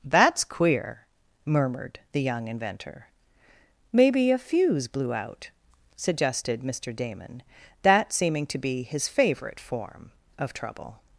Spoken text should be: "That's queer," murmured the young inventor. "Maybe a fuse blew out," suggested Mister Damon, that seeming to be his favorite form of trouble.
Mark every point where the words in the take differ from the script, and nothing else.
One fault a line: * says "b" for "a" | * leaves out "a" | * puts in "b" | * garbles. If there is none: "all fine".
all fine